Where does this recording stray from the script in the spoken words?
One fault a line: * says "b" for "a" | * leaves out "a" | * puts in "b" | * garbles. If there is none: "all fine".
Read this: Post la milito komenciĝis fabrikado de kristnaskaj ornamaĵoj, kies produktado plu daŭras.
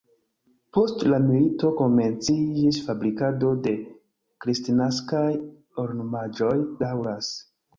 * leaves out "kies produktado plu"